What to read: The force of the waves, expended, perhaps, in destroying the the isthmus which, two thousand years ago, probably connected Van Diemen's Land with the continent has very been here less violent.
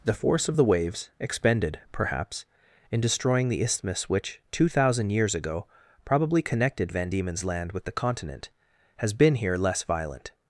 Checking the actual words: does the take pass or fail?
fail